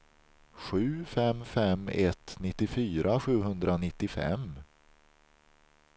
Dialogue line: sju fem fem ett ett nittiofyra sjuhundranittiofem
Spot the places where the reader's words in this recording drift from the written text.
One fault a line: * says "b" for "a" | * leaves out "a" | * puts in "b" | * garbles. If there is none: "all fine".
* leaves out "ett"